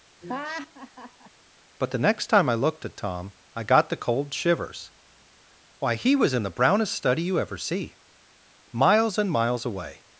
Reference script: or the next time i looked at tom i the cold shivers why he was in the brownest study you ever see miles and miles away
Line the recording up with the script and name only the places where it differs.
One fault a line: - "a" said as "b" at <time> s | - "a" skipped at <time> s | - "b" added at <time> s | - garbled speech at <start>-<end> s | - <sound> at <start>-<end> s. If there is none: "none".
- laugh at 0.2-1.3 s
- "or" said as "but" at 1.8 s
- "got" added at 3.6 s